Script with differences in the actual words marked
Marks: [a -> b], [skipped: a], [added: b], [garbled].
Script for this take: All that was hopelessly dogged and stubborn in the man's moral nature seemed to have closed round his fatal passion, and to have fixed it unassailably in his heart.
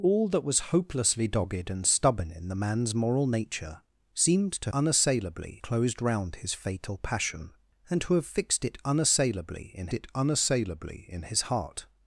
All that was hopelessly dogged and stubborn in the man's moral nature seemed to [have -> unassailably] closed round his fatal passion, and to have fixed it unassailably in [added: it unassailably in] his heart.